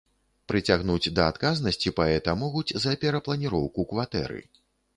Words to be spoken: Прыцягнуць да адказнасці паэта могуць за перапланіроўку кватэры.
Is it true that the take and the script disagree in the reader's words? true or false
false